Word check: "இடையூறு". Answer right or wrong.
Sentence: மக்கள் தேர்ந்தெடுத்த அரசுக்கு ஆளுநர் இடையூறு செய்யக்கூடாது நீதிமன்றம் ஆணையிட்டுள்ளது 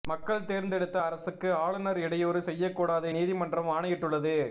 right